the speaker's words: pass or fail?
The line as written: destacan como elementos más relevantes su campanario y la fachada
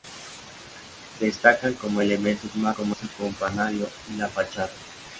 fail